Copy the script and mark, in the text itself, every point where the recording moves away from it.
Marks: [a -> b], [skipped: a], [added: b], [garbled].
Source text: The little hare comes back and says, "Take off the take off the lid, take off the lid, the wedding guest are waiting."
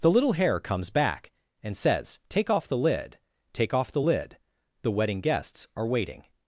The little hare comes back and says, "Take off the [skipped: take off the] lid, take off the lid, the wedding [guest -> guests] are waiting."